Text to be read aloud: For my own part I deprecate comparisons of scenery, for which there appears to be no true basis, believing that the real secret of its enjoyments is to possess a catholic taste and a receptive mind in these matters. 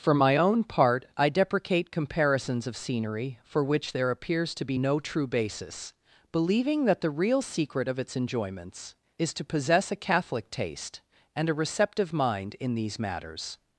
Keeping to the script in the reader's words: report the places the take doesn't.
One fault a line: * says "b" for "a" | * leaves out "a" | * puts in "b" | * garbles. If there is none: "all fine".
all fine